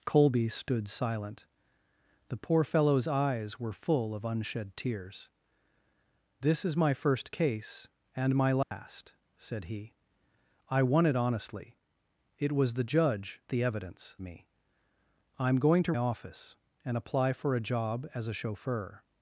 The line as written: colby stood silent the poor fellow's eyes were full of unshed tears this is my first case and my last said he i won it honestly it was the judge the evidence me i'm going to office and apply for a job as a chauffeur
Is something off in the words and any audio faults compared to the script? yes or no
yes